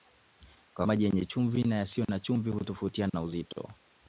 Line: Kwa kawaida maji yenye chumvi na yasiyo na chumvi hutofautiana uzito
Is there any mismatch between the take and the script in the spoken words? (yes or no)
yes